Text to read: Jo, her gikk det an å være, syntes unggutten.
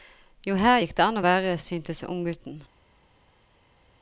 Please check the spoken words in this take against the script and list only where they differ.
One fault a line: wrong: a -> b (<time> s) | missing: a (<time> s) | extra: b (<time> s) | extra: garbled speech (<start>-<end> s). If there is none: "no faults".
no faults